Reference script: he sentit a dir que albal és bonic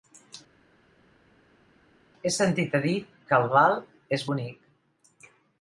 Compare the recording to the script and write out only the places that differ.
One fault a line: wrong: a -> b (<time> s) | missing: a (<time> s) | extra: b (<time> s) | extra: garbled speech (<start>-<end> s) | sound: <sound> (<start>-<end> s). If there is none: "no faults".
no faults